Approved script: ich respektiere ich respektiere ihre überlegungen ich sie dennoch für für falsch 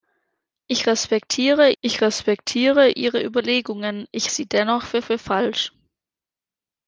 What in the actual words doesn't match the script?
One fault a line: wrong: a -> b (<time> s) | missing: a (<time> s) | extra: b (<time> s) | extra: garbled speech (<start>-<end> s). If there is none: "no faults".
no faults